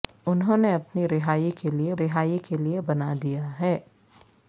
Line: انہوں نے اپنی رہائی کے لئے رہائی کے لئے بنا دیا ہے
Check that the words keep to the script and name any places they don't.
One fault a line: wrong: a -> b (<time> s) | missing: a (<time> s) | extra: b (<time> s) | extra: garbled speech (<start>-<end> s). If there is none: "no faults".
no faults